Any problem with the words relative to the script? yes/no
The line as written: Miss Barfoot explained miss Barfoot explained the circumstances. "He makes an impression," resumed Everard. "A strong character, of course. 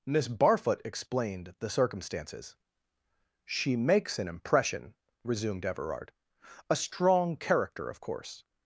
yes